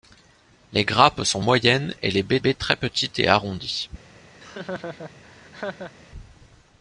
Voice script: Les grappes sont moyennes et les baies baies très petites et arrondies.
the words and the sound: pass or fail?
fail